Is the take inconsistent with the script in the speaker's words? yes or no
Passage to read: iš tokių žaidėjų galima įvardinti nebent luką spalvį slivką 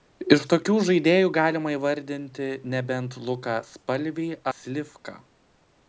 no